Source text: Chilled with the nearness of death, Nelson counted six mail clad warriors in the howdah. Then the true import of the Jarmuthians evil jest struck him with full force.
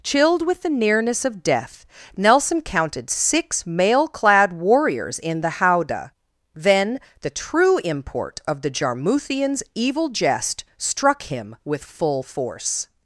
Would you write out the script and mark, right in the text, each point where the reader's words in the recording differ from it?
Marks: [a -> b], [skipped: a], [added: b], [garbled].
Chilled with the nearness of death, Nelson counted six mail clad warriors in the howdah. Then the true import of the Jarmuthians evil jest struck him with full force.